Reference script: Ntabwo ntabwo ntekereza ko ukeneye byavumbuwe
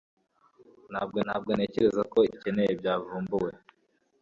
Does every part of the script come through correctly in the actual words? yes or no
yes